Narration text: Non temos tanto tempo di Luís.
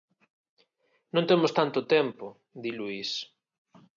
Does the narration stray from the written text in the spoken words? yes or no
no